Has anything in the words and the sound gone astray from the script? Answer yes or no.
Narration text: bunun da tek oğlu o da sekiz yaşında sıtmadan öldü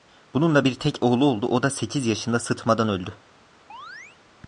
yes